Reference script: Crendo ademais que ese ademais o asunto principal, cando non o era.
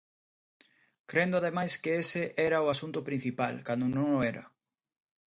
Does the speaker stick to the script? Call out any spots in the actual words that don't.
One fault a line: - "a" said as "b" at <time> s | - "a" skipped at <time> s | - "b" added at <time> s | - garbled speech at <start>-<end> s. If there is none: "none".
- "ademais" said as "era" at 2.5 s